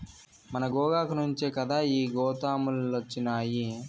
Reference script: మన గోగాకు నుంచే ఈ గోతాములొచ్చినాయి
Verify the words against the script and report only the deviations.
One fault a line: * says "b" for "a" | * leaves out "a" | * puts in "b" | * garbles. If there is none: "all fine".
* puts in "కదా"